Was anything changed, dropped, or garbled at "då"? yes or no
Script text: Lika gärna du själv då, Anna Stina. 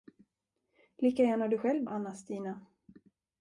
yes